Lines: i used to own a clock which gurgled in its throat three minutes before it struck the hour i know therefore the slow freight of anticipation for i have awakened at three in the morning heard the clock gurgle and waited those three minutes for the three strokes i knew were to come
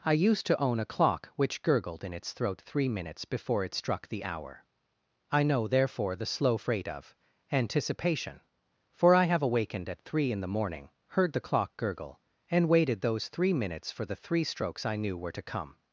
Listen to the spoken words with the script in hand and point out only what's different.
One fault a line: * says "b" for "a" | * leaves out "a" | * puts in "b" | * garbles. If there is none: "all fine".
all fine